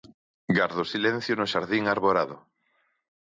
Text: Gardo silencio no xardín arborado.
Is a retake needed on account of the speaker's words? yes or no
no